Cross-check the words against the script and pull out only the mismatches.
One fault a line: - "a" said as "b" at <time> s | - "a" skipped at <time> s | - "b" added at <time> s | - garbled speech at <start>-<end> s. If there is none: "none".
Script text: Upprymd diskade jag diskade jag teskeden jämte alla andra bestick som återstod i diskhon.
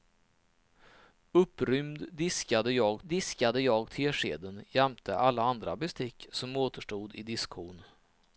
none